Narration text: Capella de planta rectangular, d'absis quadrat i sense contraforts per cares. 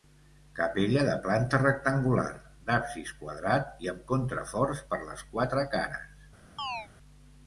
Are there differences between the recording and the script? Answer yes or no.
yes